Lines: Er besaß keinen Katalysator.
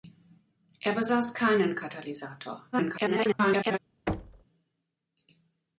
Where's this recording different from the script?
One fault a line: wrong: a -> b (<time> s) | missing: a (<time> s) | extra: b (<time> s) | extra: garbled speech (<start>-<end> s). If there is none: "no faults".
extra: garbled speech (2.7-3.8 s)